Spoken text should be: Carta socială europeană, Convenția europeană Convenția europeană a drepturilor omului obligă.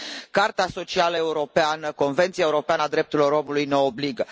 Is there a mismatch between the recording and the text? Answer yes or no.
yes